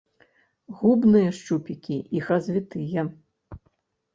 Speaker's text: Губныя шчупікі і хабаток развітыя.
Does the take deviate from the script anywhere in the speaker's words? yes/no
yes